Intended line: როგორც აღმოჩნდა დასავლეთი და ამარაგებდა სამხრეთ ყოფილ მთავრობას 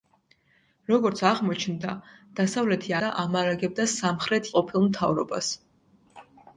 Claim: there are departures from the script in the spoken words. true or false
false